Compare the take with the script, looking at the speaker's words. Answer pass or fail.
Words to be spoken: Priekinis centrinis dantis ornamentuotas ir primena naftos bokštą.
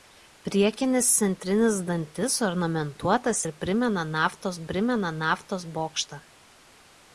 fail